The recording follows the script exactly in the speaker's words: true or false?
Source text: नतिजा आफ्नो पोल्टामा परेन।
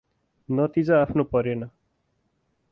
false